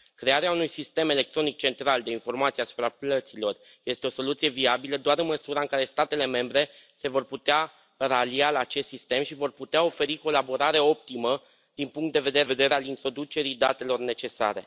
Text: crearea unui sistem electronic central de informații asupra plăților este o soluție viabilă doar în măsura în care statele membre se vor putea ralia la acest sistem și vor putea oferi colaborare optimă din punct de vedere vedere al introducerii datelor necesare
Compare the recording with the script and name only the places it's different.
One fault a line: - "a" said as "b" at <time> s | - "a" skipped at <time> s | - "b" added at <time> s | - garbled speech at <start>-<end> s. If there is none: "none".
none